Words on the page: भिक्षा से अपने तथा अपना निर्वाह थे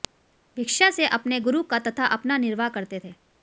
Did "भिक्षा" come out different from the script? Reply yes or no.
no